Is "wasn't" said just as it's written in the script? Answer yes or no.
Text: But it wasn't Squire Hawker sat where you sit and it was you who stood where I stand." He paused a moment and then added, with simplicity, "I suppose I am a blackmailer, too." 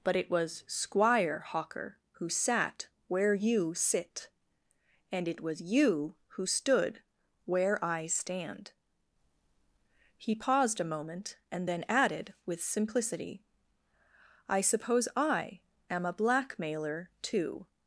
no